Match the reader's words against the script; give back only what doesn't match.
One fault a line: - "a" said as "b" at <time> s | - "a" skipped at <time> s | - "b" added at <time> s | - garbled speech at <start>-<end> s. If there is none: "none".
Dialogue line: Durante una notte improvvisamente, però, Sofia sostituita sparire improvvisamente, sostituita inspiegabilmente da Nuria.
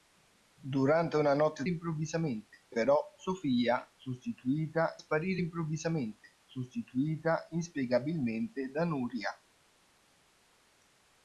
none